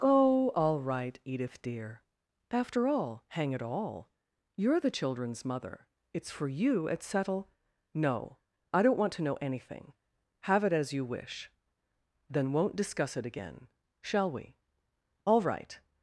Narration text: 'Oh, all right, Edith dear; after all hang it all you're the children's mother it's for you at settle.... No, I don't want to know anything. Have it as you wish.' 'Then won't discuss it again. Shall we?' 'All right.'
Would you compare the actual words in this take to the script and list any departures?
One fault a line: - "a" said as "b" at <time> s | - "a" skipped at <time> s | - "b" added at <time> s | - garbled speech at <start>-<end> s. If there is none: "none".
none